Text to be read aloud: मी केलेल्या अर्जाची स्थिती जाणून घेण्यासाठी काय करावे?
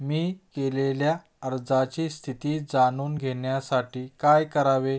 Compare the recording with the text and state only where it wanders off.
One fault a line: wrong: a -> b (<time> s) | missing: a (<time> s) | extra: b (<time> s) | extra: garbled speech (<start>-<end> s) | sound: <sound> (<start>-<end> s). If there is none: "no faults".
no faults